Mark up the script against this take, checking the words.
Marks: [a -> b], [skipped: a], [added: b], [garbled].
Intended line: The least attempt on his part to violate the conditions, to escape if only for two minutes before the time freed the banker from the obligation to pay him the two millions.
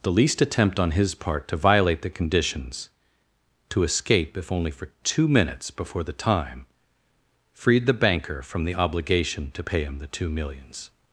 The least attempt on his part to violate the conditions, to escape if only for two minutes before the time freed the banker from the obligation to pay him the two millions.